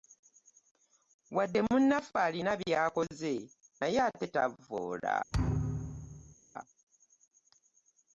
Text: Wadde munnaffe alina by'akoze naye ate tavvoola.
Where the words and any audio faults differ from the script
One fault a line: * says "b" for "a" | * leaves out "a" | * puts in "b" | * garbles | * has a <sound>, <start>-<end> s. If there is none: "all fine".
* has a thud, 5.3-6.4 s